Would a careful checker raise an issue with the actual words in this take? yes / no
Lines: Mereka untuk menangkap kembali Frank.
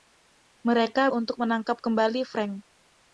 no